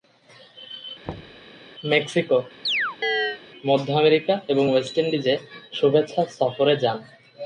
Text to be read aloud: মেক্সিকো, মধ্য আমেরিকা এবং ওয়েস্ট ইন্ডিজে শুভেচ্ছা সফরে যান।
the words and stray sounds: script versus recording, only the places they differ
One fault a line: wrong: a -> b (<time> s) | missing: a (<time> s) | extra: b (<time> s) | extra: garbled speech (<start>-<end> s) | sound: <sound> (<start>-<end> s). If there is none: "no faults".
sound: thud (1.0-1.5 s)
sound: chirp (2.6-3.4 s)